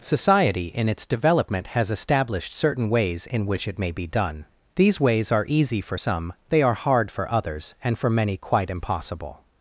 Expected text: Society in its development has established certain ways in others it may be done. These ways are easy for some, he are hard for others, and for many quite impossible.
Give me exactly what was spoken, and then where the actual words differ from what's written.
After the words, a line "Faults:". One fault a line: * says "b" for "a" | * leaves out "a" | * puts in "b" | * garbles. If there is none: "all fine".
Society in its development has established certain ways in which it may be done. These ways are easy for some, they are hard for others, and for many quite impossible.
Faults:
* says "which" for "others"
* says "they" for "he"